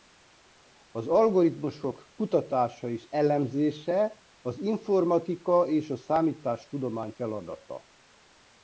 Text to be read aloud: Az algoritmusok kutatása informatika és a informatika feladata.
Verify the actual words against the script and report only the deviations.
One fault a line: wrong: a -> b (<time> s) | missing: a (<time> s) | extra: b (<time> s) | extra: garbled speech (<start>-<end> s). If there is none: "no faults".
extra: és elemzése az (2.9 s)
wrong: informatika -> számítástudomány (6.0 s)